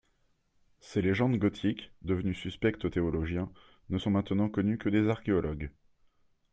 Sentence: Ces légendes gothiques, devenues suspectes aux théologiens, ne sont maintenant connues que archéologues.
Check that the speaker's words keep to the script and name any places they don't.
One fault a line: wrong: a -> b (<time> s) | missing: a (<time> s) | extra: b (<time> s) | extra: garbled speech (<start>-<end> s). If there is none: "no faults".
extra: des (4.9 s)